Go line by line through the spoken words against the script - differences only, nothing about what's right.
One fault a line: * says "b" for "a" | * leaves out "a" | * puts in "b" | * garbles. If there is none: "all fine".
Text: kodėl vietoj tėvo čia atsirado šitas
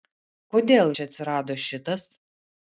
* leaves out "vietoj tėvo"